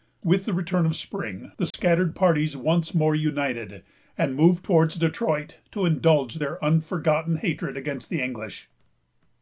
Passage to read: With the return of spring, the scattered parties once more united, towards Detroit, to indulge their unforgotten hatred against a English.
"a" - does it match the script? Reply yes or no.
no